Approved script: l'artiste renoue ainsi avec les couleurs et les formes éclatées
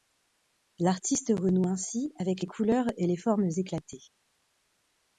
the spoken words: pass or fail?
pass